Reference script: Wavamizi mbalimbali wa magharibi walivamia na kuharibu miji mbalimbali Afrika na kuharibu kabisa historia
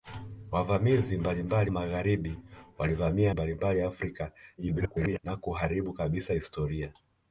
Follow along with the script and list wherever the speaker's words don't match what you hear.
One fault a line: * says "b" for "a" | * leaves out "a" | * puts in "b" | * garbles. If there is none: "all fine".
* leaves out "wa"
* leaves out "na kuharibu miji"
* garbles